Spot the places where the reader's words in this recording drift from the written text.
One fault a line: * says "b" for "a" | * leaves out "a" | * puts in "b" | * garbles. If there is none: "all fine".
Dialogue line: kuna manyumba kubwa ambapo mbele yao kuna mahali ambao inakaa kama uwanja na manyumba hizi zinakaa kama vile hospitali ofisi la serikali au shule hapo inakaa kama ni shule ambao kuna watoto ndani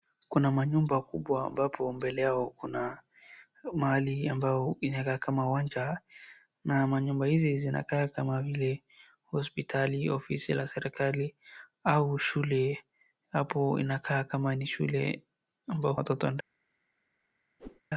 * leaves out "kuna"